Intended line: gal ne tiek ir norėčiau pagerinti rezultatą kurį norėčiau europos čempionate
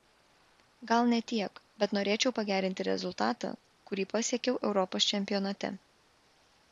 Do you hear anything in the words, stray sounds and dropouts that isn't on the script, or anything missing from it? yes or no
yes